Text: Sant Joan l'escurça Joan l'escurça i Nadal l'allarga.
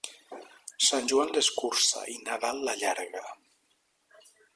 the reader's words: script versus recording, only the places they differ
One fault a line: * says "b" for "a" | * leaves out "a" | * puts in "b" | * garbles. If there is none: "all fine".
* leaves out "Joan l'escurça"